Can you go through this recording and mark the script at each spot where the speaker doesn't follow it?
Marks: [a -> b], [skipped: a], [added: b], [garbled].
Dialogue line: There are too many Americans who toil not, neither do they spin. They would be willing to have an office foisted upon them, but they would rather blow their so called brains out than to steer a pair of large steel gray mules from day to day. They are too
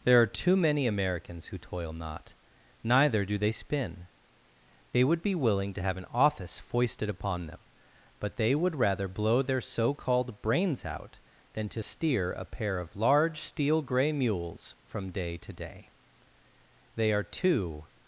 There are too many Americans who toil not, neither do they spin. They would be willing to have an office foisted upon them, but they would rather blow their so called brains out than to steer a pair of large steel gray mules from day to day. They are too